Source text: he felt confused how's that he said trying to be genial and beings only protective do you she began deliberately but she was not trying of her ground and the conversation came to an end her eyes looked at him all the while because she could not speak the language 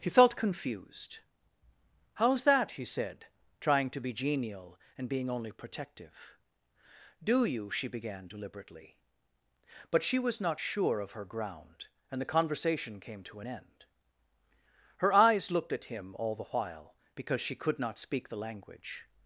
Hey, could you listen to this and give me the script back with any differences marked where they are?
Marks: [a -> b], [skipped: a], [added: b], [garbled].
he felt confused how's that he said trying to be genial and [beings -> being] only protective do you she began deliberately but she was not [trying -> sure] of her ground and the conversation came to an end her eyes looked at him all the while because she could not speak the language